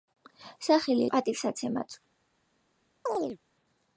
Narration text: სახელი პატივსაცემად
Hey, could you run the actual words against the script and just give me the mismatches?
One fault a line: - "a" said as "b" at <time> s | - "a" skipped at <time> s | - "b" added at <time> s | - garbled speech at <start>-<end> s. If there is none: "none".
none